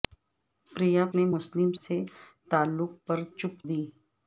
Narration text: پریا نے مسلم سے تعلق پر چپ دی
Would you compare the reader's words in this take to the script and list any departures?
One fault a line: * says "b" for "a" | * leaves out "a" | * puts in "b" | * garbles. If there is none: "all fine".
all fine